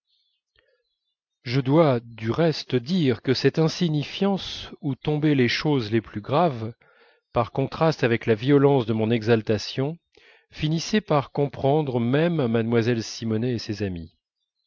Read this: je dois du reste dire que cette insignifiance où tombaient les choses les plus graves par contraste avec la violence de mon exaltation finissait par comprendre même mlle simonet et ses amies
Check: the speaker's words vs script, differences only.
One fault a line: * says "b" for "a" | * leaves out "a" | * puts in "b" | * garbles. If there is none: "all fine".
all fine